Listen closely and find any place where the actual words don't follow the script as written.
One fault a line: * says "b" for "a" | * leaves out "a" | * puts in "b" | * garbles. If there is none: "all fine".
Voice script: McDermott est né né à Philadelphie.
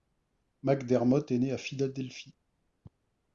* leaves out "né"